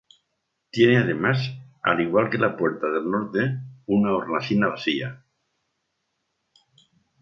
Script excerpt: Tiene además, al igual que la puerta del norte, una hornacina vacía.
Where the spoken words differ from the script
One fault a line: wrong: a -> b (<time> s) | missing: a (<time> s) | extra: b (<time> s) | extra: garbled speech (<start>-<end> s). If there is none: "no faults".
no faults